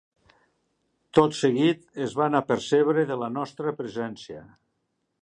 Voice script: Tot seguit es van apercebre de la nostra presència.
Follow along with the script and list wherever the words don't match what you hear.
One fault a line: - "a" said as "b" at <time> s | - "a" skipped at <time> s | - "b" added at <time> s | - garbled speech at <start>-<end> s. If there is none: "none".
none